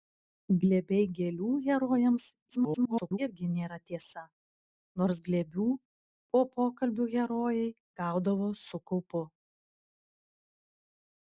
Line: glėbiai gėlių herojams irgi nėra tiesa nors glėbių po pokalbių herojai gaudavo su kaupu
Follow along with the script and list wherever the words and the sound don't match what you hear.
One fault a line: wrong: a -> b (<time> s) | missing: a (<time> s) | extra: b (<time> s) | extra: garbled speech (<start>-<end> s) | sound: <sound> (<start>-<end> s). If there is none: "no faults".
extra: garbled speech (2.5-3.2 s)